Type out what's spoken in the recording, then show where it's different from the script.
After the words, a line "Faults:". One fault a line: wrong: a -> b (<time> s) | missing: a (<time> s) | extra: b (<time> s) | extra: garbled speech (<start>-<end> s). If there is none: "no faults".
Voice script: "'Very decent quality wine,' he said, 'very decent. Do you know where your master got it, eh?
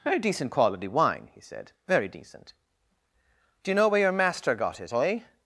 "'Very decent quality wine,' he said, 'very decent. Do you know where your master got it, eh?
Faults:
no faults